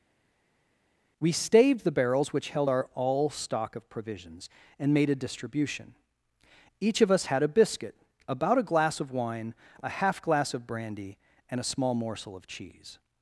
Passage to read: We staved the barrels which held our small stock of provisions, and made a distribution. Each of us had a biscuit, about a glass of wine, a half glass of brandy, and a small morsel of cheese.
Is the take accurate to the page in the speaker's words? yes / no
no